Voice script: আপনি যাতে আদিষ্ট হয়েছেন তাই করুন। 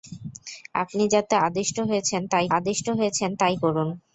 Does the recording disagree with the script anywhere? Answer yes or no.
yes